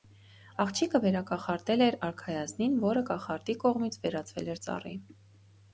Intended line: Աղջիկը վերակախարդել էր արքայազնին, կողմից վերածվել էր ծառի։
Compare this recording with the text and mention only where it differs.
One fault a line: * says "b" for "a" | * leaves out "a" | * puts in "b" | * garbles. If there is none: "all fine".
* puts in "որը կախարդի"